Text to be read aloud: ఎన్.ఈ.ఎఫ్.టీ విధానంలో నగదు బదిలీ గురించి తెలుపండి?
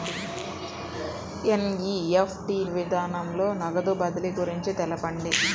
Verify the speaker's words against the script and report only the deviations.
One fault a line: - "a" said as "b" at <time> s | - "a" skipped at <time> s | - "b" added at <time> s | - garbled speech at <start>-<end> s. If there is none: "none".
none